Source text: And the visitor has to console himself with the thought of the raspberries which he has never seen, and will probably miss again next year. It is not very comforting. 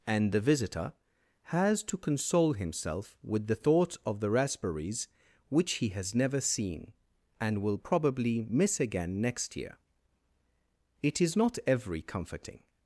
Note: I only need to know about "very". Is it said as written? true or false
false